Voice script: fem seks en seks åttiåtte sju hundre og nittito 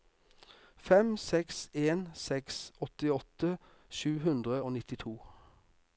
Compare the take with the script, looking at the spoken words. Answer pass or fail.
pass